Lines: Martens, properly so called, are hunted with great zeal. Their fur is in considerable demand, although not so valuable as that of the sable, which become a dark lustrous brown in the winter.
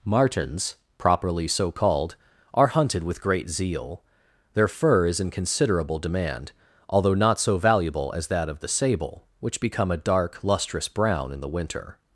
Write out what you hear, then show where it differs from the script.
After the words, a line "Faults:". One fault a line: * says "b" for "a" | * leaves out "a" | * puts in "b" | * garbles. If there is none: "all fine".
Martens, properly so called, are hunted with great zeal. Their fur is in considerable demand, although not so valuable as that of the sable, which become a dark lustrous brown in the winter.
Faults:
all fine